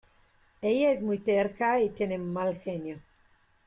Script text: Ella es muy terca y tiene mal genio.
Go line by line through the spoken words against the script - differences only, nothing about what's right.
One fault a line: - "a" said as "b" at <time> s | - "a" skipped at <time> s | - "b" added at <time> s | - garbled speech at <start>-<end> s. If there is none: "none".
none